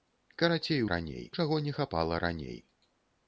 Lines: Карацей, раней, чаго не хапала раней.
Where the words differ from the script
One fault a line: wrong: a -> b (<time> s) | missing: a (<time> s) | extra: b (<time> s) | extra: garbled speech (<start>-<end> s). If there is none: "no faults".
no faults